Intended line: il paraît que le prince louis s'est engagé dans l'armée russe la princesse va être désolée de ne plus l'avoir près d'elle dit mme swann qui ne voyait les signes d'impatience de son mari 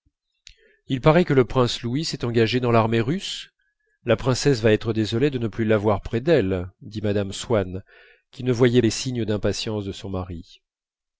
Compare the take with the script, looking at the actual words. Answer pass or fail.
pass